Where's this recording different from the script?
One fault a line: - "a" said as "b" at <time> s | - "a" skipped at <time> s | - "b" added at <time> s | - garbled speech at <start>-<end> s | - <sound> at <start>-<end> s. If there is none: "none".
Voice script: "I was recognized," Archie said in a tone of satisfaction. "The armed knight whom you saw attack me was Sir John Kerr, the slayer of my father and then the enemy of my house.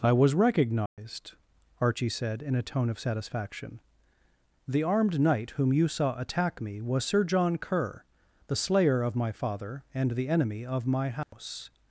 - dropout at 0.9-1.0 s
- "then" skipped at 10.1 s
- dropout at 11.2-11.3 s